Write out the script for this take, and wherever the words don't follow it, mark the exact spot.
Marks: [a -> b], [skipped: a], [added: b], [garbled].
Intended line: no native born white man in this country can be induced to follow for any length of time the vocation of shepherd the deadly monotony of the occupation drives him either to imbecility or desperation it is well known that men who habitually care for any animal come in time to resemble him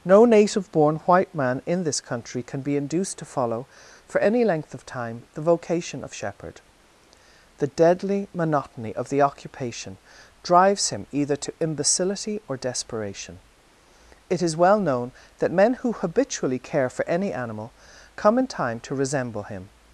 no native born white man in this country can be induced to follow for any length of time the vocation of shepherd the deadly monotony of the occupation drives him either to imbecility or desperation it is well known that men who habitually care for any animal come in time to resemble him